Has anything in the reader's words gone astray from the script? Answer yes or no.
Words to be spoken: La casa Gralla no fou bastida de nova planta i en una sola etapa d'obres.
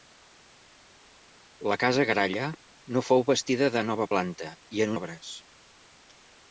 yes